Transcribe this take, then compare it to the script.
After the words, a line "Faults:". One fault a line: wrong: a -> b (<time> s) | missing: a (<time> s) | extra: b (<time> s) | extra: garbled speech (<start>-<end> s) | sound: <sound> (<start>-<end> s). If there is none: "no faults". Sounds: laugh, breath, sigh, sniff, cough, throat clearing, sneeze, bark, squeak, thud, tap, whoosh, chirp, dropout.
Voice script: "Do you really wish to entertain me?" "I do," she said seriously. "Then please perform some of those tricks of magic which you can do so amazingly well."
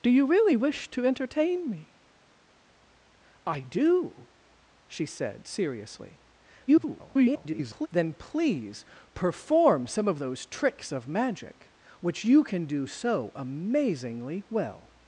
"Do you really wish to entertain me?" "I do," she said seriously. [garbled] "Then please perform some of those tricks of magic which you can do so amazingly well."
Faults:
extra: garbled speech (6.7-7.9 s)